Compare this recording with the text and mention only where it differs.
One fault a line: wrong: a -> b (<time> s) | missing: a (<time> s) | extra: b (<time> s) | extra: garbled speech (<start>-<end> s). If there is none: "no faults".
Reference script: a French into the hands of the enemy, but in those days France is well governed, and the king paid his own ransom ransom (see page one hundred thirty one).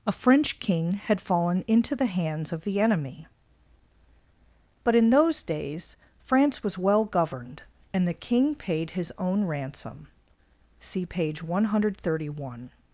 extra: king had fallen (0.6 s)
wrong: is -> was (6.6 s)
missing: ransom (10.1 s)